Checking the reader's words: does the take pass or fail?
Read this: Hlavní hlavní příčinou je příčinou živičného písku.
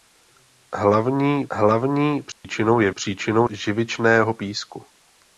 pass